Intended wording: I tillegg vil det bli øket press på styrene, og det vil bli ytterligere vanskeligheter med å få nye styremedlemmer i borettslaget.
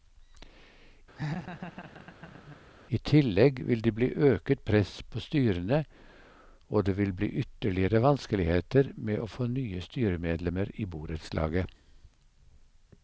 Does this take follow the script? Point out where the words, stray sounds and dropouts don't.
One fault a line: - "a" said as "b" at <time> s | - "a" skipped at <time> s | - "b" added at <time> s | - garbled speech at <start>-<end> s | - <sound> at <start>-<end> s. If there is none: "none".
- laugh at 1.1-2.6 s